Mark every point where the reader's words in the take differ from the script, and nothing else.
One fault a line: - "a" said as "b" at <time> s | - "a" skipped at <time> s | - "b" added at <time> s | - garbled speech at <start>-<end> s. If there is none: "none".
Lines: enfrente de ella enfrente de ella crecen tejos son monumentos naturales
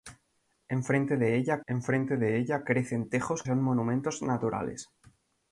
none